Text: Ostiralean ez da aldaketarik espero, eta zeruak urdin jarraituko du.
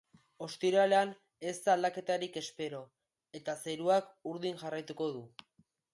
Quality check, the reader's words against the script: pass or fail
pass